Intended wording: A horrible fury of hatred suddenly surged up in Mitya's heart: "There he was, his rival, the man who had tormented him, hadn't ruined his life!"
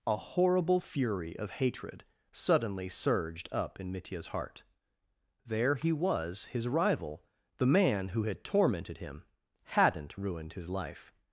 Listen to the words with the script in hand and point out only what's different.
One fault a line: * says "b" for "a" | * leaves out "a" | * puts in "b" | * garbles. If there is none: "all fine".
all fine